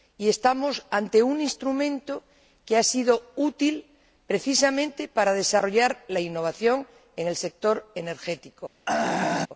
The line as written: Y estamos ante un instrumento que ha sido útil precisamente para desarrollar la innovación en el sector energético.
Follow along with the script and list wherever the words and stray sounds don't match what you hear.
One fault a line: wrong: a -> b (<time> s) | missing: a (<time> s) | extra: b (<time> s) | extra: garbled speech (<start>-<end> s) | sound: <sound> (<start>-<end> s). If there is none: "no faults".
sound: throat clearing (8.9-9.5 s)